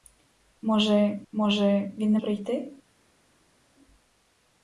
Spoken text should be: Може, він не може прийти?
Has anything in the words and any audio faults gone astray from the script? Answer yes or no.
yes